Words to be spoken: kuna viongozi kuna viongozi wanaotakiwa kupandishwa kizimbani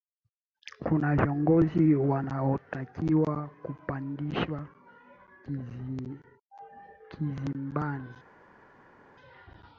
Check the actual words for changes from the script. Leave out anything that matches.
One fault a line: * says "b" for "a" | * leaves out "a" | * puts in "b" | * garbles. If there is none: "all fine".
* leaves out "kuna viongozi"